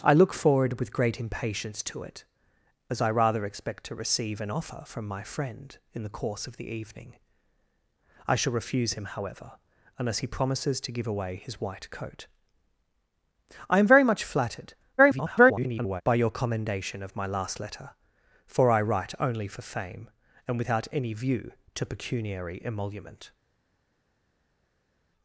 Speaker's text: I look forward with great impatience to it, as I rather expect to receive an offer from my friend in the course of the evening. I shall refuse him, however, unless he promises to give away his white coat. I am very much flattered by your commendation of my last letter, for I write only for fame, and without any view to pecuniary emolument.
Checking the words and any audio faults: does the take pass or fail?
fail